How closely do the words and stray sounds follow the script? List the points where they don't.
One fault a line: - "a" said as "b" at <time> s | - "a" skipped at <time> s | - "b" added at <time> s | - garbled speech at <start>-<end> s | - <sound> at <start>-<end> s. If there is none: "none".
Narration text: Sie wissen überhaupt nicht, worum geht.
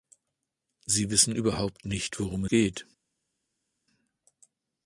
none